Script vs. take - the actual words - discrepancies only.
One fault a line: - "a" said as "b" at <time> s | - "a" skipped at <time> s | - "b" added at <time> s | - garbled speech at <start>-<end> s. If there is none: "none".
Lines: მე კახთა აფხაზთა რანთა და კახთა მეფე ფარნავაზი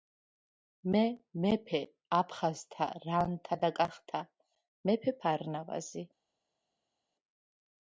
- "კახთა" said as "მეფე" at 1.4 s